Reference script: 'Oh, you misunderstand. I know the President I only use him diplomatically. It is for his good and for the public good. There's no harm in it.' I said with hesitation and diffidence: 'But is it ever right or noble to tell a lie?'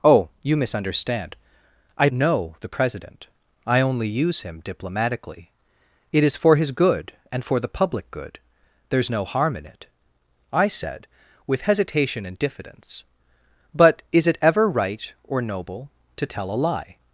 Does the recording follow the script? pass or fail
pass